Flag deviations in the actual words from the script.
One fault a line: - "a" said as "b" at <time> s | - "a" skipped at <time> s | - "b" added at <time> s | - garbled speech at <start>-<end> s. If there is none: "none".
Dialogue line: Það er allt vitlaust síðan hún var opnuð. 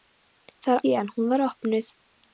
- "allt vitlaust" skipped at 0.8 s